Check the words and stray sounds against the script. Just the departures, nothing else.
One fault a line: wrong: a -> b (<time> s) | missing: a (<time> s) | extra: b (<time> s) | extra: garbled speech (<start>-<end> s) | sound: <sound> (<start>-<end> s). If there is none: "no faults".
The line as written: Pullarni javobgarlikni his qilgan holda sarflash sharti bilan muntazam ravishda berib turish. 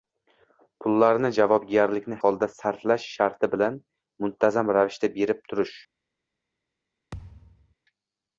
missing: his qilgan (2.2 s)
sound: thud (7.1-7.7 s)